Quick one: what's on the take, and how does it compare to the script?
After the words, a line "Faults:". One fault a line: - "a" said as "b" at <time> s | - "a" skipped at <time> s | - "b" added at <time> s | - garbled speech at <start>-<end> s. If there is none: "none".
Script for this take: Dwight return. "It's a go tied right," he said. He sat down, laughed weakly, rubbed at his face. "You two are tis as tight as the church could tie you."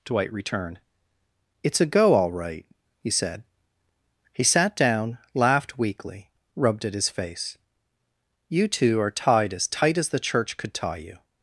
Dwight returned. "It's a go all right," he said. He sat down, laughed weakly, rubbed at his face. "You two are tied as tight as the church could tie you."
Faults:
- "return" said as "returned" at 0.3 s
- "tied" said as "all" at 2.1 s
- "tis" said as "tied" at 9.1 s